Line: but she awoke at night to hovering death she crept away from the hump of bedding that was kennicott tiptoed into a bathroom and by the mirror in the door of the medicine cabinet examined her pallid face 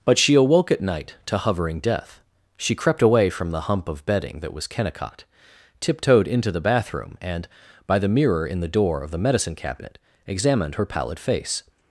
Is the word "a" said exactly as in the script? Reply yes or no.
no